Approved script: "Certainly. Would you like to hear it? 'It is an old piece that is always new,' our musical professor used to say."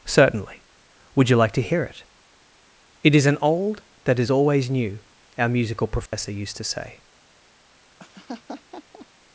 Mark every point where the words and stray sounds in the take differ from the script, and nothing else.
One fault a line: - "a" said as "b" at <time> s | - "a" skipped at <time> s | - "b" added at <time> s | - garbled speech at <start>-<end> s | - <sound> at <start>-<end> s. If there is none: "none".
- "piece" skipped at 3.8 s
- dropout at 6.1-6.1 s
- laugh at 8.0-9.1 s